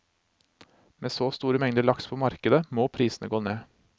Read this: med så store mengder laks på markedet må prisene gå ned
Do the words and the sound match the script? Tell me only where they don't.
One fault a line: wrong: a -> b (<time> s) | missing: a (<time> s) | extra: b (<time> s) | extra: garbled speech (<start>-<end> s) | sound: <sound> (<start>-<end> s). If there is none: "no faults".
no faults